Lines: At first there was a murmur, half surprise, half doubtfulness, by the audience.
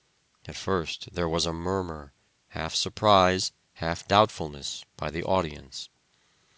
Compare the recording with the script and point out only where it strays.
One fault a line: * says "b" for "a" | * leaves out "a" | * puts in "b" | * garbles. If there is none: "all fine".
all fine